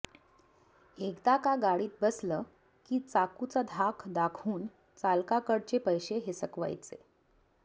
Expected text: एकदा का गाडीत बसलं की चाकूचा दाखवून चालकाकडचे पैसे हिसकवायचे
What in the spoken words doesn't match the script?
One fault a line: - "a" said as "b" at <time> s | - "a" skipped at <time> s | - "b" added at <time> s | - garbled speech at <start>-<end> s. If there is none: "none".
- "धाक" added at 3.7 s